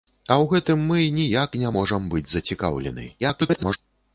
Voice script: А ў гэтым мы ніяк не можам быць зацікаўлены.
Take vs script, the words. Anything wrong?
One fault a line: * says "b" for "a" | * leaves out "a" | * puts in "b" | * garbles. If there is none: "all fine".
* garbles